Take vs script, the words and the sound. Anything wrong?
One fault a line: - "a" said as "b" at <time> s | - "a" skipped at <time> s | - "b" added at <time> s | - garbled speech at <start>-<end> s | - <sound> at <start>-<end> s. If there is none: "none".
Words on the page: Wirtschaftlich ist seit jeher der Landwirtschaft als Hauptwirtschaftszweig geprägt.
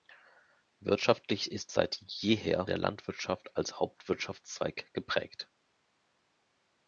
none